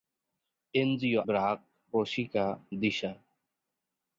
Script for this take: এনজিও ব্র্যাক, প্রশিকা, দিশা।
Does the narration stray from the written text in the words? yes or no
no